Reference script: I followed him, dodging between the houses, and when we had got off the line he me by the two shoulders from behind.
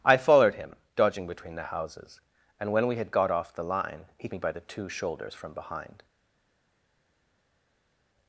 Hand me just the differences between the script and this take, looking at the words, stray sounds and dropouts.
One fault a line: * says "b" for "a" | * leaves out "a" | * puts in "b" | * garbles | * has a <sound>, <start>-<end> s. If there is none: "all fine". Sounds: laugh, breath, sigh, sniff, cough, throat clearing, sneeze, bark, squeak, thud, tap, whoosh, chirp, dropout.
all fine